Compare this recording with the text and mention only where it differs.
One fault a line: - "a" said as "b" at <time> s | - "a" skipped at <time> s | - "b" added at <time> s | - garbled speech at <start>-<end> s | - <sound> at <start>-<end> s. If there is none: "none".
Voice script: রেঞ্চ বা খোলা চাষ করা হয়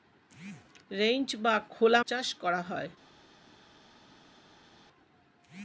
none